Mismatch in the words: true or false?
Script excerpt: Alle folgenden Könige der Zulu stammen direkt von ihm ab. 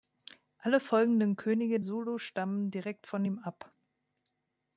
true